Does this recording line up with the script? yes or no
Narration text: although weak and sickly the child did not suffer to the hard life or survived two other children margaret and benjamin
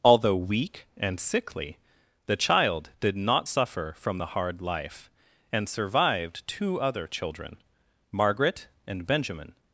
no